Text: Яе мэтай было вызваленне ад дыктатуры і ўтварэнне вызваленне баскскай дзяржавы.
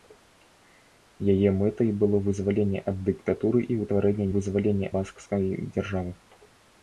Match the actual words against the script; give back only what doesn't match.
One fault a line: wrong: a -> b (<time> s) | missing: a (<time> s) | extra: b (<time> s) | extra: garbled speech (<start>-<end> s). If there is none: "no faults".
no faults